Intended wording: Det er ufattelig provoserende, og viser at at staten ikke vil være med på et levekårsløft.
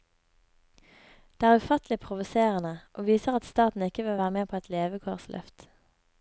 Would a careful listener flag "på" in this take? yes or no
no